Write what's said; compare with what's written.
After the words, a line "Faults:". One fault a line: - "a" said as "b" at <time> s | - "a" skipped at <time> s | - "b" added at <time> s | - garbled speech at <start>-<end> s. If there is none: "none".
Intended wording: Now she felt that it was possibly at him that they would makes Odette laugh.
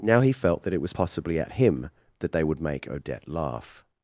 Now he felt that it was possibly at him that they would make Odette laugh.
Faults:
- "she" said as "he" at 0.2 s
- "makes" said as "make" at 2.6 s